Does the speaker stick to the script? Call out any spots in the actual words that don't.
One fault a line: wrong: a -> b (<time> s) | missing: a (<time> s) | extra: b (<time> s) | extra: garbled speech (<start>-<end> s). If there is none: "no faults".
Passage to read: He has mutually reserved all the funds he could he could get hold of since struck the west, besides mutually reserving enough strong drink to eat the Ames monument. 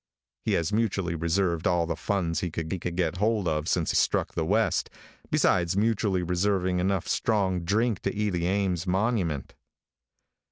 no faults